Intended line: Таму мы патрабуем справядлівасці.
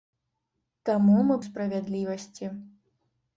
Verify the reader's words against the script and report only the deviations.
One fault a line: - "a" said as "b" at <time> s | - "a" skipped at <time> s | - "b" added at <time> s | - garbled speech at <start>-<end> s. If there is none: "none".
- "патрабуем" skipped at 1.4 s